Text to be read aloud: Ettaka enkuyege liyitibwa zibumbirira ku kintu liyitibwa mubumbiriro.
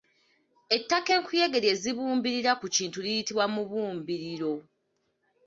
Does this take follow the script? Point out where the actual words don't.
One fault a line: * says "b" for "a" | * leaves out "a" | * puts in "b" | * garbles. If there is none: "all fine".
* says "lye" for "liyitibwa"